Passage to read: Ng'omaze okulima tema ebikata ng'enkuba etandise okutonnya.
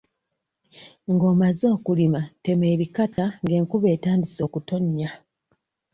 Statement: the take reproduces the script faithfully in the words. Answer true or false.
true